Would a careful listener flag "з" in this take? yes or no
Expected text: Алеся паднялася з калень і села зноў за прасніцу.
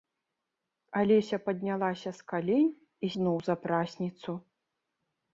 no